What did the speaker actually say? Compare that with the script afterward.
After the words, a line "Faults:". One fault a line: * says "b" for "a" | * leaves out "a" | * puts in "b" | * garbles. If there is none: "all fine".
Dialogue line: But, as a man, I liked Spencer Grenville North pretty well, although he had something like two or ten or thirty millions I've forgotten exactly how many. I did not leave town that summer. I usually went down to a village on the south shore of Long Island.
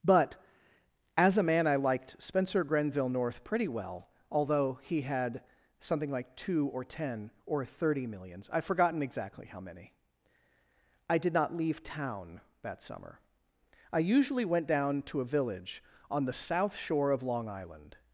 But, as a man, I liked Spencer Grenville North pretty well, although he had something like two or ten or thirty millions I've forgotten exactly how many. I did not leave town that summer. I usually went down to a village on the south shore of Long Island.
Faults:
all fine